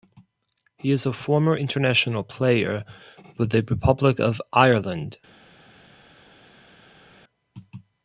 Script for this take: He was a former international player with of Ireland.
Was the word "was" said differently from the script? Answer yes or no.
yes